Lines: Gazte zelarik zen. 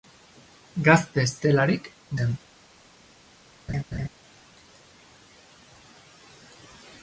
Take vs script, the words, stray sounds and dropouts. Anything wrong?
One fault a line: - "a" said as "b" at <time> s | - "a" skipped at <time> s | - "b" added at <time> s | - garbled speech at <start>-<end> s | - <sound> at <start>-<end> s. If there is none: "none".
- laugh at 3.7-4.1 s